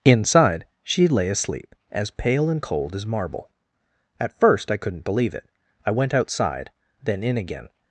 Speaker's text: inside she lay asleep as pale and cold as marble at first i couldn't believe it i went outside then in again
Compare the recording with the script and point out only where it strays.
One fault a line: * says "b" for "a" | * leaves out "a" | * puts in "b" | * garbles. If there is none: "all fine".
all fine